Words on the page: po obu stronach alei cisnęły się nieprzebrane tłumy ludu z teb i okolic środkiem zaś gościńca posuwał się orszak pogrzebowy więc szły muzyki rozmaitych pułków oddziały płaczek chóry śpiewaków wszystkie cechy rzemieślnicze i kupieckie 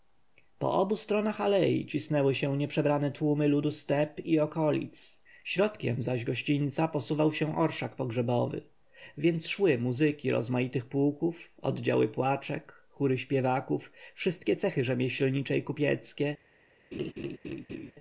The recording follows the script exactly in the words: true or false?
true